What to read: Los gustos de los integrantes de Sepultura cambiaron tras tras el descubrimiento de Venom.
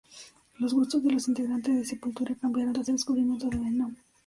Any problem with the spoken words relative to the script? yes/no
yes